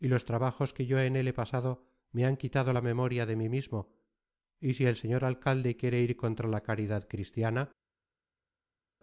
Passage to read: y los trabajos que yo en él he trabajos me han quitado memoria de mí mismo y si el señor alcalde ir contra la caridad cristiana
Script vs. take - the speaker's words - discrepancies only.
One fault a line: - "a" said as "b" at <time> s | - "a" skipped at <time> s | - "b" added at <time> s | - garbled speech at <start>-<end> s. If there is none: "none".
- "trabajos" said as "pasado" at 1.3 s
- "la" added at 2.7 s
- "quiere" added at 5.7 s